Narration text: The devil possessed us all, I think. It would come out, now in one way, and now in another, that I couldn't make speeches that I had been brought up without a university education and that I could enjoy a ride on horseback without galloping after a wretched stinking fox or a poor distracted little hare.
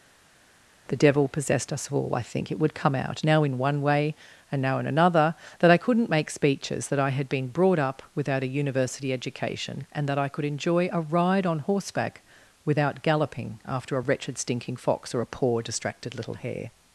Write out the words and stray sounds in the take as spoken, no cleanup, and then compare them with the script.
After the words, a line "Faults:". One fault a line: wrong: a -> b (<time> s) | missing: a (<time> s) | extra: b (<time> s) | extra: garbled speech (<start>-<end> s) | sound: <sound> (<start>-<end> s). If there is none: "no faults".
The devil possessed us all, I think. It would come out, now in one way, and now in another, that I couldn't make speeches that I had been brought up without a university education and that I could enjoy a ride on horseback without galloping after a wretched stinking fox or a poor distracted little hare.
Faults:
no faults